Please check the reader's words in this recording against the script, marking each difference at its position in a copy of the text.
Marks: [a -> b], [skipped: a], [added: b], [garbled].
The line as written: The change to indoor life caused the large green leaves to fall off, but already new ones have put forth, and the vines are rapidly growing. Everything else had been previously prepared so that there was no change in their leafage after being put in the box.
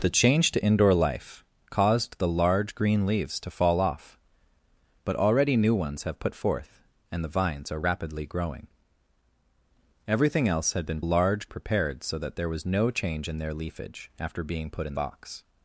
The change to indoor life caused the large green leaves to fall off, but already new ones have put forth, and the vines are rapidly growing. Everything else had been [previously -> large] prepared so that there was no change in their leafage after being put in [skipped: the] box.